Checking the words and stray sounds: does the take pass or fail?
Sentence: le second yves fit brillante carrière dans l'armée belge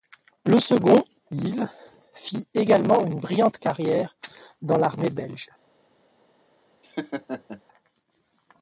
fail